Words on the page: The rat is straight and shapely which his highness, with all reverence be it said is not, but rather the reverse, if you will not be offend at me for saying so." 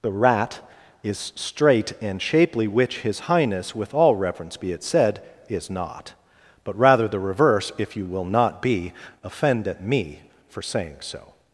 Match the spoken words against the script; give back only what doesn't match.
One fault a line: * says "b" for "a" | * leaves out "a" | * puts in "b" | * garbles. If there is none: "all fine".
all fine